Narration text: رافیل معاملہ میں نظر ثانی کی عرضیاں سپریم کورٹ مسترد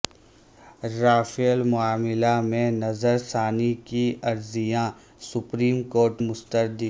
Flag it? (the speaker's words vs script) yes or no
no